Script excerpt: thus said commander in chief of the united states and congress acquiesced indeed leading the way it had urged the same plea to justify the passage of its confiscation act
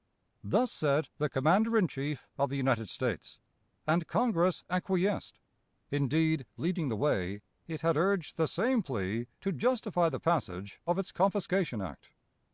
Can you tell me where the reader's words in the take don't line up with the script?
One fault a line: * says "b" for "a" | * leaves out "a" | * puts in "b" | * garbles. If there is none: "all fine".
* puts in "the"